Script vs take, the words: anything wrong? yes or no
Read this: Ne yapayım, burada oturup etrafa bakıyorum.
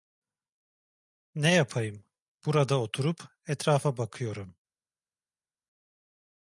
no